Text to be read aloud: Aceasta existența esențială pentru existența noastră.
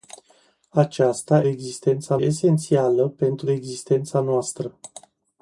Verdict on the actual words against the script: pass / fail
pass